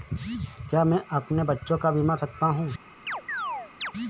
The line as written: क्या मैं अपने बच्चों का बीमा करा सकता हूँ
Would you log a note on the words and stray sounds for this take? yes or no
yes